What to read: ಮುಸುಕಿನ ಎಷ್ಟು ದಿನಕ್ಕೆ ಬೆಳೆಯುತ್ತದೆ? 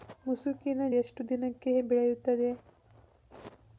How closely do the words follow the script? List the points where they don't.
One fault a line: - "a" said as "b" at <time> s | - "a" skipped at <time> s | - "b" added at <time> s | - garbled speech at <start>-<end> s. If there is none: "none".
none